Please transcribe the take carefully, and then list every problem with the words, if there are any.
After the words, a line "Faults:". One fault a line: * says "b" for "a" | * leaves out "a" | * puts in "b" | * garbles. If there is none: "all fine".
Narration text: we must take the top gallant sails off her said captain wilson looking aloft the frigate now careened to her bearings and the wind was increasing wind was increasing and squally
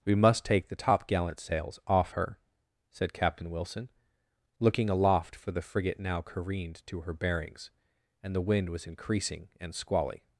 we must take the top gallant sails off her said captain wilson looking aloft for the frigate now careened to her bearings and the wind was increasing and squally
Faults:
* puts in "for"
* leaves out "wind was increasing"